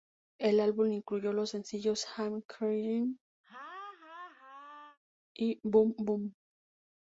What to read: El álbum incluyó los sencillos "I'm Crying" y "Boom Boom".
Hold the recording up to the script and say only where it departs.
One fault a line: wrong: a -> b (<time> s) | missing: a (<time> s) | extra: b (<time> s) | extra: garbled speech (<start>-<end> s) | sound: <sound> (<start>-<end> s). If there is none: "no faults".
sound: laugh (3.4-5.0 s)